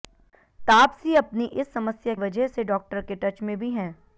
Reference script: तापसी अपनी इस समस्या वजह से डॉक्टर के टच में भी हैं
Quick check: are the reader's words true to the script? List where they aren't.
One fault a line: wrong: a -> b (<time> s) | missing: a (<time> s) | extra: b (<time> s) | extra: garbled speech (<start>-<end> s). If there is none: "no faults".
no faults